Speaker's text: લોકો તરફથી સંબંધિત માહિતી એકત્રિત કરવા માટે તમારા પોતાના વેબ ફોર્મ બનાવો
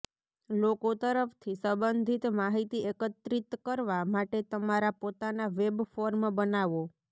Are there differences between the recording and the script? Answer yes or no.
no